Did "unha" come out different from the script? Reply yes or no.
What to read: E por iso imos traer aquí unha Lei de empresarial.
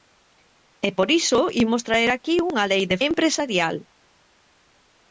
no